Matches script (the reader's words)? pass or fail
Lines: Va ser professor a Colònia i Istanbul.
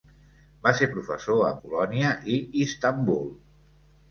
pass